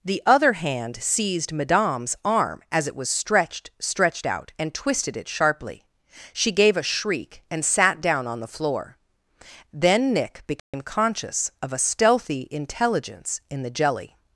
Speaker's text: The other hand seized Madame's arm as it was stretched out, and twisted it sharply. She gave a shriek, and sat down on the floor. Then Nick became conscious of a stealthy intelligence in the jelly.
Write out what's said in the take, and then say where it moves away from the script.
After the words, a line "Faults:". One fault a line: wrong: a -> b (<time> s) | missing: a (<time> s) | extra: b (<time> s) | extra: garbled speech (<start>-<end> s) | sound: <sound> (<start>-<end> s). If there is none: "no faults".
The other hand seized Madame's arm as it was stretched stretched out, and twisted it sharply. She gave a shriek, and sat down on the floor. Then Nick became conscious of a stealthy intelligence in the jelly.
Faults:
extra: stretched (3.8 s)
sound: dropout (10.6-10.7 s)